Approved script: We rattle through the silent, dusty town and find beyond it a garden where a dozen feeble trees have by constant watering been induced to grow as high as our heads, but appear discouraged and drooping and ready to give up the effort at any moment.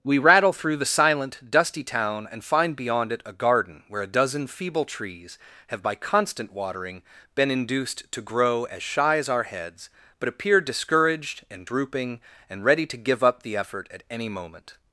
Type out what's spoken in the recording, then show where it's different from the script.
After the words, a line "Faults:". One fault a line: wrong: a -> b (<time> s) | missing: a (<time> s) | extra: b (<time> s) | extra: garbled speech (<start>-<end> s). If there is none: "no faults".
We rattle through the silent, dusty town and find beyond it a garden where a dozen feeble trees have by constant watering been induced to grow as shy as our heads, but appear discouraged and drooping and ready to give up the effort at any moment.
Faults:
wrong: high -> shy (8.8 s)